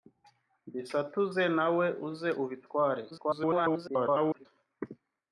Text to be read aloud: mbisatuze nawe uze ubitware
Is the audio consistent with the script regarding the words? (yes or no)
no